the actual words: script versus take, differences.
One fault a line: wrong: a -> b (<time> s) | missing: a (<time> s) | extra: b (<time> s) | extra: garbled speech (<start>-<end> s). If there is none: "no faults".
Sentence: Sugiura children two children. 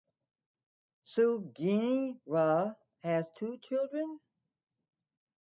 wrong: children -> has (3.0 s)